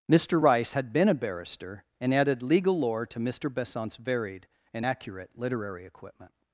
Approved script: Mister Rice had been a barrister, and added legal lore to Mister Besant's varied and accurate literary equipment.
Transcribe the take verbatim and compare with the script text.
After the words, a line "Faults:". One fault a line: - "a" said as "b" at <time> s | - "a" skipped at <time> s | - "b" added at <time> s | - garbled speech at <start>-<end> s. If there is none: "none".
Mister Rice had been a barrister, and added legal lore to Mister Besant's varied and accurate literary equipment.
Faults:
none